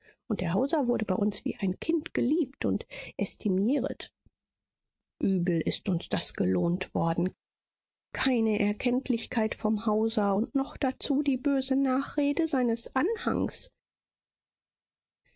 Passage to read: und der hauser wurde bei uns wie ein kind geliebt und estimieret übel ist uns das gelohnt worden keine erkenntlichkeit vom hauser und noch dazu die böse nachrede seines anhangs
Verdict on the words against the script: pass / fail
pass